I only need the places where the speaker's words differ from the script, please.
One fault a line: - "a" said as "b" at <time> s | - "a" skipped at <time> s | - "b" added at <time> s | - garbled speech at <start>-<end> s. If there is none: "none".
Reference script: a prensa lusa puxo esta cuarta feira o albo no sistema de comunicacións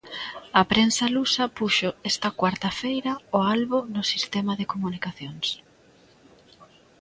none